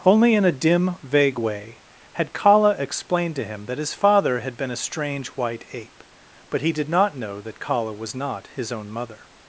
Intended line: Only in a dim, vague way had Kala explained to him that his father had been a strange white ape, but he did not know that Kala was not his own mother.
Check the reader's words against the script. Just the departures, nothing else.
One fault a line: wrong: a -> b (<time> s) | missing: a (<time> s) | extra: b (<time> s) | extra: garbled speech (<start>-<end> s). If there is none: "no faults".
no faults